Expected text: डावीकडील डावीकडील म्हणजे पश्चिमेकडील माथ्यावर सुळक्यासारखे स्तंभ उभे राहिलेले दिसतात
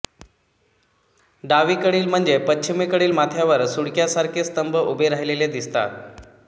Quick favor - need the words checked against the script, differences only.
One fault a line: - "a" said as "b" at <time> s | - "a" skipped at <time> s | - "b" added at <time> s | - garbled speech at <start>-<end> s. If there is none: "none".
- "डावीकडील" skipped at 2.1 s